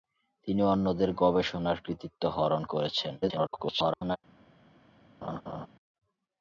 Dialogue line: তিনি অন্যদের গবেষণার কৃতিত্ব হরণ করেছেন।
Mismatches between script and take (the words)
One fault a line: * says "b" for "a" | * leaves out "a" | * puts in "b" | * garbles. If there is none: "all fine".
* garbles